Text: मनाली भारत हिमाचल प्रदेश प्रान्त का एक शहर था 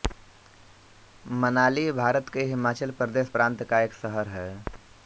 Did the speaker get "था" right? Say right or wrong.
wrong